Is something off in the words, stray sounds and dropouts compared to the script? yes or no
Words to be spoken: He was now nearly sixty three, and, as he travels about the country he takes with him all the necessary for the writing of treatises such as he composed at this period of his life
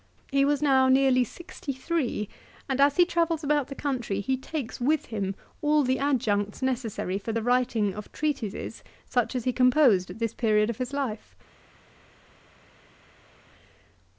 yes